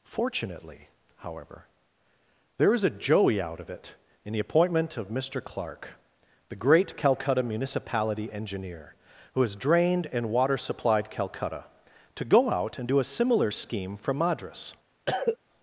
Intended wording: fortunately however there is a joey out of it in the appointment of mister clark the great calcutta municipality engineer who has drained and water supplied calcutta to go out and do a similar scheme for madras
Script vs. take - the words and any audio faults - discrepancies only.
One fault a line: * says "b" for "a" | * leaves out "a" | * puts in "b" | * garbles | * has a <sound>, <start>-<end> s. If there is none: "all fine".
* has a cough, 15.1-15.4 s